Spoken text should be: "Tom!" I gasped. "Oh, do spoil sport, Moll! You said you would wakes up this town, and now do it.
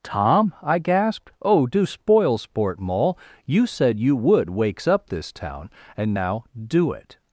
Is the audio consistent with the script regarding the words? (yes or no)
yes